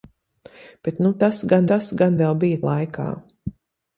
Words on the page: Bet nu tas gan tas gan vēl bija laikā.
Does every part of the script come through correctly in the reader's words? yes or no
yes